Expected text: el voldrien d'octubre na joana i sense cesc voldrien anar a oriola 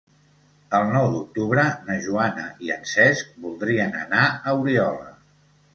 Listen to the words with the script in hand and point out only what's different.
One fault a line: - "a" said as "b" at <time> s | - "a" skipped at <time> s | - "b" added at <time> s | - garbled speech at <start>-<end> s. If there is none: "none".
- "voldrien" said as "nou" at 0.9 s
- "sense" said as "en" at 2.8 s